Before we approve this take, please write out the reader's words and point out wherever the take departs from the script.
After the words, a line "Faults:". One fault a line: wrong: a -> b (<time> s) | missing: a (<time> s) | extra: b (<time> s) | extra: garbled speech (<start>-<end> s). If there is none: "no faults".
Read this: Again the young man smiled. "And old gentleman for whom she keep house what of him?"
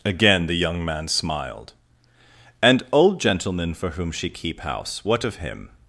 Again the young man smiled. "And old gentleman for whom she keep house what of him?"
Faults:
no faults